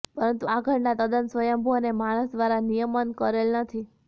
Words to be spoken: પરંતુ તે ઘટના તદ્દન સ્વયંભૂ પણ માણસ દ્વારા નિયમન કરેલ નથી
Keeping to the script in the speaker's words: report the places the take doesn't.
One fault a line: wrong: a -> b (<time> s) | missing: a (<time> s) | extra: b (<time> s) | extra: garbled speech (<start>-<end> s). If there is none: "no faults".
wrong: તે -> આ (0.4 s)
wrong: પણ -> અને (1.8 s)